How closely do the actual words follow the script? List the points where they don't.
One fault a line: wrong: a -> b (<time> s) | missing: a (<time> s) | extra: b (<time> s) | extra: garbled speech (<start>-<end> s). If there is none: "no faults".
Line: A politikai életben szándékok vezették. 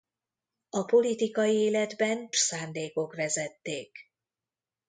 no faults